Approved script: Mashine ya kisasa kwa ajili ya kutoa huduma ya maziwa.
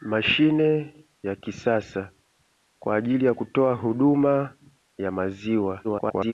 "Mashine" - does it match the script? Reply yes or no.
yes